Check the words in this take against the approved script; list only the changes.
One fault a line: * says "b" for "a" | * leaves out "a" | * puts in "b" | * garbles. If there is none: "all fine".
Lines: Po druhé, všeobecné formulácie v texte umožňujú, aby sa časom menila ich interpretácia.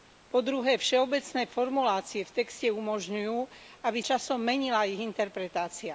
* leaves out "sa"